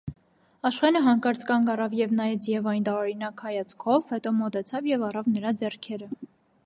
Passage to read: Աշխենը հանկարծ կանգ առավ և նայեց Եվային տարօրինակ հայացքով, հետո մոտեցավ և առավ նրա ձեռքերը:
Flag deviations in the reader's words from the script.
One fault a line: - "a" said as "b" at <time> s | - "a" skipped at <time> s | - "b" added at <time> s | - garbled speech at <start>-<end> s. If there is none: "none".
none